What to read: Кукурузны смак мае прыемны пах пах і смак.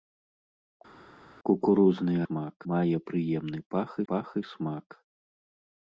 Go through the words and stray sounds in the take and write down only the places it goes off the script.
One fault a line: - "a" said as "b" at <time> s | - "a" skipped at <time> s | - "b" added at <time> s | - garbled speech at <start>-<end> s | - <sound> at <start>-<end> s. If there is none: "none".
none